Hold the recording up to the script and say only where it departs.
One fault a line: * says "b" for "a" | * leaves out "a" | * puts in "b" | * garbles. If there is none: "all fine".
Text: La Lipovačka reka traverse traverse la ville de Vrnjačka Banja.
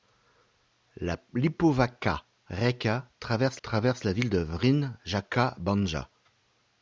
all fine